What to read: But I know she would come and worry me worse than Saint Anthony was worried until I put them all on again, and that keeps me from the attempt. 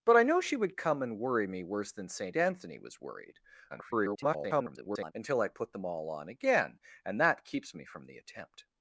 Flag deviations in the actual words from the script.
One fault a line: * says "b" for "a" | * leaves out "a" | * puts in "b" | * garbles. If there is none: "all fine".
* garbles